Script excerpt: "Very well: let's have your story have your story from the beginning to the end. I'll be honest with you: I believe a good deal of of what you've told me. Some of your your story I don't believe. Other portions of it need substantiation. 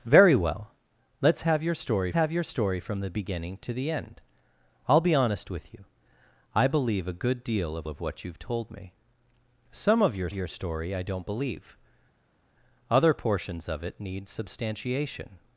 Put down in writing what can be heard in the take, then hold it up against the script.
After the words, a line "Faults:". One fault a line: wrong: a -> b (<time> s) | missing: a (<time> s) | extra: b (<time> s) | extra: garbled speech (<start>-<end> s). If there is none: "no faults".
"Very well: let's have your story have your story from the beginning to the end. I'll be honest with you: I believe a good deal of of what you've told me. Some of your your story I don't believe. Other portions of it need substantiation.
Faults:
no faults